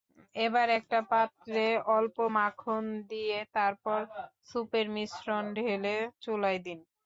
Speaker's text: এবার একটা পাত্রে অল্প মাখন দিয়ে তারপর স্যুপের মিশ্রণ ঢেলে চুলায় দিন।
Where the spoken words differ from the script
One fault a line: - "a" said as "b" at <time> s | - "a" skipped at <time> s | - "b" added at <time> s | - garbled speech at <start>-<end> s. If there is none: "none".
none